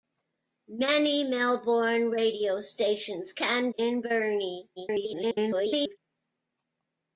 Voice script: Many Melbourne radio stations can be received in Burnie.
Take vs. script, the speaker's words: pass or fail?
fail